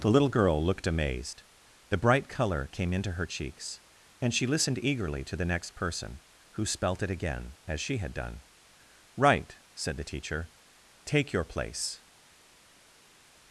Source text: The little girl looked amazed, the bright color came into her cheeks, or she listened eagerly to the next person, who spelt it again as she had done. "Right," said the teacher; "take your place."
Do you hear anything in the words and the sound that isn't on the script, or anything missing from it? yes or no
yes